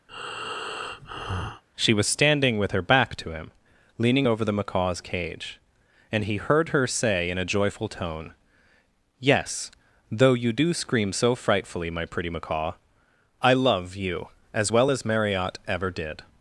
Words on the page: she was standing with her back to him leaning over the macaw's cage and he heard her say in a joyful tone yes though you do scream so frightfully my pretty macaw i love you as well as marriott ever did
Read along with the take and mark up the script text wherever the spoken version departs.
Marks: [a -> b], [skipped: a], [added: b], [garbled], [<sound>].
[breath] she was standing with her back to him leaning over the macaw's cage and he heard her say in a joyful tone yes though you do scream so frightfully my pretty macaw i love you as well as marriott ever did